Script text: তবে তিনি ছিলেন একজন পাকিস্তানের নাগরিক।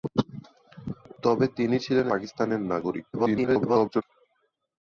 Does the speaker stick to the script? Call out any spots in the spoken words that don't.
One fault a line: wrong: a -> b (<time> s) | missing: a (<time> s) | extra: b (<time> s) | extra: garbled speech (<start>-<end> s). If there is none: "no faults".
missing: একজন (2.1 s)
extra: garbled speech (3.1-4.0 s)